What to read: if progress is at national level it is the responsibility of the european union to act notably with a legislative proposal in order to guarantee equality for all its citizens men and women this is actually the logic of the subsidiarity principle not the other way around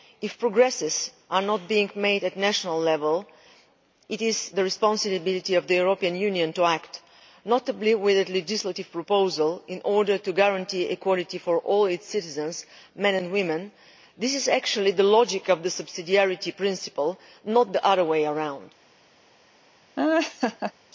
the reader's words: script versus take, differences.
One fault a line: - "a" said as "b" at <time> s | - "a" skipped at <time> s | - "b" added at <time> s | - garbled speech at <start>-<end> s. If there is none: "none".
- "not being made" added at 1.3 s